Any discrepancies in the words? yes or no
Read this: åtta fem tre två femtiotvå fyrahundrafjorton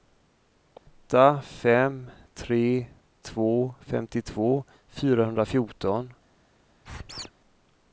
no